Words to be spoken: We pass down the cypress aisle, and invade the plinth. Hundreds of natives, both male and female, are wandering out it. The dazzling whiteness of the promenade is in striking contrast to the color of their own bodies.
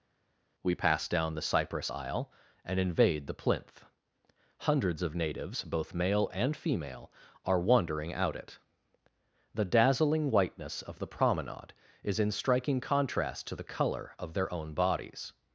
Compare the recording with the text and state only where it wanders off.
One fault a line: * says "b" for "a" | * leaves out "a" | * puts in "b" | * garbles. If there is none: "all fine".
all fine